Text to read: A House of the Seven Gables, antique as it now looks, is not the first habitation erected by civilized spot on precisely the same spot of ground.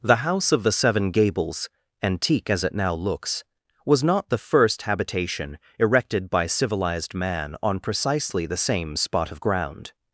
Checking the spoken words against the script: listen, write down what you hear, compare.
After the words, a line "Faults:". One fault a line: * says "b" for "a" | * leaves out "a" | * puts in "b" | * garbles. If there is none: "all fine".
The House of the Seven Gables, antique as it now looks, was not the first habitation erected by civilized man on precisely the same spot of ground.
Faults:
* says "The" for "A"
* says "was" for "is"
* says "man" for "spot"